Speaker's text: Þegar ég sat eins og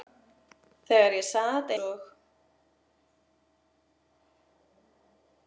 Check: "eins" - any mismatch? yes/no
yes